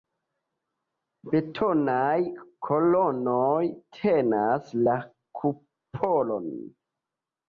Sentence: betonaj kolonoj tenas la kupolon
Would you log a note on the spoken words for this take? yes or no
no